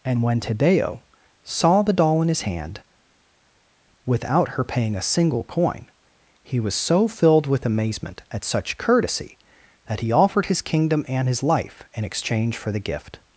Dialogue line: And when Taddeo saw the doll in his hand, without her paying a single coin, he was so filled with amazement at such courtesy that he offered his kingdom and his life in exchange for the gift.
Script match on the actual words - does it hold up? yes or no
yes